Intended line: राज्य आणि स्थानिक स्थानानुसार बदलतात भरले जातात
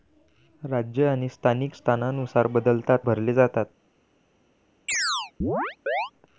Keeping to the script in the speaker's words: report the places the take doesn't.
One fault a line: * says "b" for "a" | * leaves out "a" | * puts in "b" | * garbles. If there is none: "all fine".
all fine